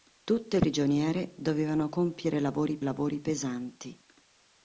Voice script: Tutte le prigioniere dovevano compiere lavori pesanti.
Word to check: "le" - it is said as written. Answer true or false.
false